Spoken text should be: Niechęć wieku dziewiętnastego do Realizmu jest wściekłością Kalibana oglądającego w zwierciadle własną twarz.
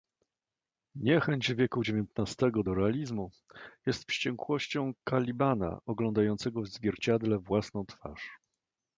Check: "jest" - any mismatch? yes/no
no